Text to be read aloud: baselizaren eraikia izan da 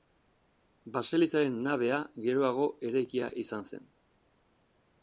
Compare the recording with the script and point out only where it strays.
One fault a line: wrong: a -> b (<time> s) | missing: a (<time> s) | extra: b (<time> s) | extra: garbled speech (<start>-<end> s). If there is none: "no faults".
extra: nabea geroago (1.7 s)
wrong: da -> zen (3.7 s)